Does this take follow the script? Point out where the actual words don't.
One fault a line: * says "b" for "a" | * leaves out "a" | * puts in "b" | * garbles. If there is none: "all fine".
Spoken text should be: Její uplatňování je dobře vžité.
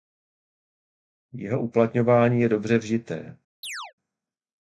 * says "Jeho" for "Její"